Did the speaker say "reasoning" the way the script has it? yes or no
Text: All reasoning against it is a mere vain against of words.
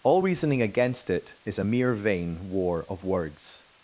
yes